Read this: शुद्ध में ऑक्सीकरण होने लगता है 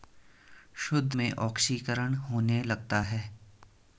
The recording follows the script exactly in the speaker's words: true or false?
true